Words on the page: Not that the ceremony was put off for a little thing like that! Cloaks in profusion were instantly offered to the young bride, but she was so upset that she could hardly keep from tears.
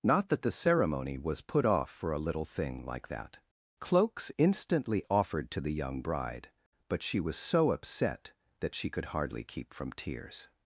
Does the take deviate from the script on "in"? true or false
true